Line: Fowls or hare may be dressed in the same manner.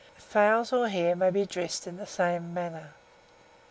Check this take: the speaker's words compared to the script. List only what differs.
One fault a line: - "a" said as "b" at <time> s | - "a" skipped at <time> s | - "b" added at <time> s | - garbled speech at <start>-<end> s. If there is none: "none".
none